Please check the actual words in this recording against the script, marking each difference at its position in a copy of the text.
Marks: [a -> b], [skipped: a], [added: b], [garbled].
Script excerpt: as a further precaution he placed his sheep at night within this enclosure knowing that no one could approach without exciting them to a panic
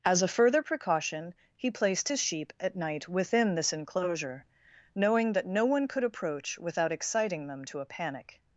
as a further precaution he placed his sheep at night within this enclosure knowing that no one could approach without exciting them to a panic